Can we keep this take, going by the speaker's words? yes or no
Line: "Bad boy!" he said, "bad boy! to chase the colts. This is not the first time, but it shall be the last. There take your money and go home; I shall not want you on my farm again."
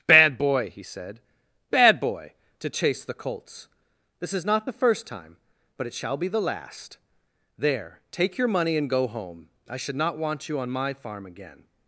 no